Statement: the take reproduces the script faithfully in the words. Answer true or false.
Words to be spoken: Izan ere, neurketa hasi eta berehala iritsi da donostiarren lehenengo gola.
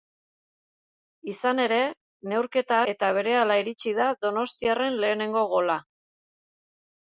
false